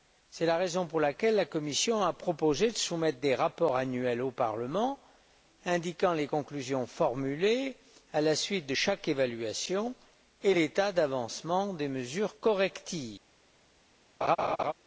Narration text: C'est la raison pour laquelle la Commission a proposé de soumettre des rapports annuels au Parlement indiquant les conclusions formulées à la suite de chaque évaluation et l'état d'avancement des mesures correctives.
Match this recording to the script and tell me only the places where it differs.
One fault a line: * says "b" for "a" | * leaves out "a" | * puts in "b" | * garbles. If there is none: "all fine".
all fine